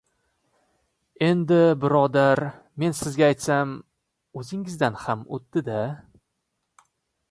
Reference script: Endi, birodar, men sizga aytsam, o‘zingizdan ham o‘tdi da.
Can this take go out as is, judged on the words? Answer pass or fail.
pass